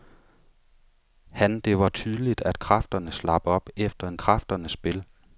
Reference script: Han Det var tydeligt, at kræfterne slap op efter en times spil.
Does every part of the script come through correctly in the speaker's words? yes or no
no